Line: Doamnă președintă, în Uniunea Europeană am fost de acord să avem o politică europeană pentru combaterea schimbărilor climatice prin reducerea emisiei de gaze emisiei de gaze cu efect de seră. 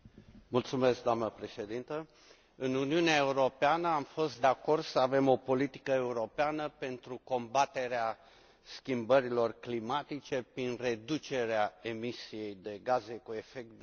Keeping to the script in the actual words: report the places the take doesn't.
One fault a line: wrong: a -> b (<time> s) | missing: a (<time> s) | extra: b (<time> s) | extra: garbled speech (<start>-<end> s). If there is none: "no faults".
missing: emisiei de gaze (13.2 s)